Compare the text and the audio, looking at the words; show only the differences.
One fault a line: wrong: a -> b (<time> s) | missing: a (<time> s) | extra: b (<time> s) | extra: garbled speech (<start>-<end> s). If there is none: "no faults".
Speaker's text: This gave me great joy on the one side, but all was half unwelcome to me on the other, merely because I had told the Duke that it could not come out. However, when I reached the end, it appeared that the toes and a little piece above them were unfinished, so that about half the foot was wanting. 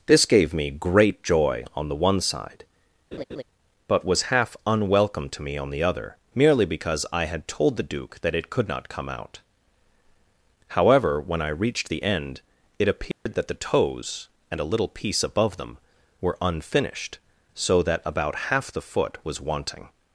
missing: all (4.1 s)